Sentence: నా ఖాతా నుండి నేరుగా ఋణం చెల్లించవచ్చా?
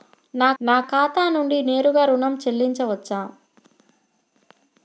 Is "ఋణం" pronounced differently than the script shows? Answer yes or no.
no